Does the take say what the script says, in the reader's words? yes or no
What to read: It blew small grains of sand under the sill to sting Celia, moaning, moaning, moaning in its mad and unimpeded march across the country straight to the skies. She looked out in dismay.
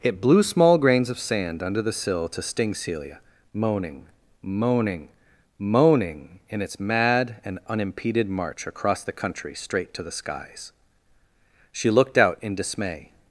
yes